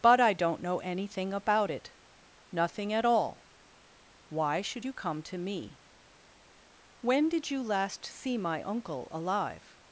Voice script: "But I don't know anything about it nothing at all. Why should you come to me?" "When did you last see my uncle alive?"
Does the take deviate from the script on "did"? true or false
false